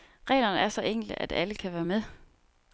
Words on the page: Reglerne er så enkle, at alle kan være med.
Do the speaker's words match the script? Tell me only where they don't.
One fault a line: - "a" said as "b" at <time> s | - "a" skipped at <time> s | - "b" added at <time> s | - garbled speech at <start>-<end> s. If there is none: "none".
none